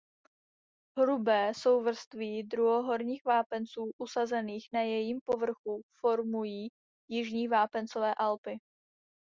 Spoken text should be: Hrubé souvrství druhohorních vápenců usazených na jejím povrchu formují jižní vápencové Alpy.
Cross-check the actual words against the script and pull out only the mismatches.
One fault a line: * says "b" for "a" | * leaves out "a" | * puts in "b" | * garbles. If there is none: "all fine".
all fine